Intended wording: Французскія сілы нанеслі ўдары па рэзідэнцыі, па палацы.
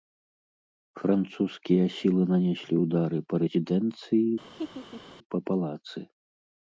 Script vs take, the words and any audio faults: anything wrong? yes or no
yes